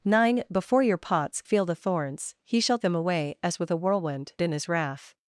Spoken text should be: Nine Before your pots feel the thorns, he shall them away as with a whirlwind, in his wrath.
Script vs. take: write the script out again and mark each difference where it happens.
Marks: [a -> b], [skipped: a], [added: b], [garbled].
Nine Before your pots feel the thorns, he shall them away as with a whirlwind, in his wrath.